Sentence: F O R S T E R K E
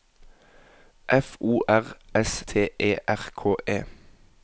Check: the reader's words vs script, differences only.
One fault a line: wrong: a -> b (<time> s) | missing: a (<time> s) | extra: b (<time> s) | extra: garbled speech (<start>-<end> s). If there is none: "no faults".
no faults